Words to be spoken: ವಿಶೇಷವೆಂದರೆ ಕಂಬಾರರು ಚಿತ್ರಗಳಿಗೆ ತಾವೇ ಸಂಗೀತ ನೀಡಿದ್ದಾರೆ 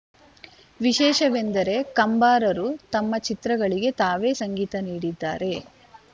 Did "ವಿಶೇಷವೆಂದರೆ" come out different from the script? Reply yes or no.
no